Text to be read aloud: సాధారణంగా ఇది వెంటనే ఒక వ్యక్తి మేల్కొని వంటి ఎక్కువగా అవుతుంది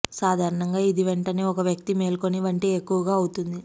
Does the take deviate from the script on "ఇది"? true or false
false